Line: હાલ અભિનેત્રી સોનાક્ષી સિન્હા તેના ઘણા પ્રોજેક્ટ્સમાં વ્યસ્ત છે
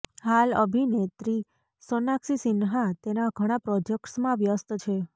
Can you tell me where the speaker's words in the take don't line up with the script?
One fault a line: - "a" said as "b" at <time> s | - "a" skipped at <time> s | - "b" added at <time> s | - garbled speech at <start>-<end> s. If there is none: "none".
none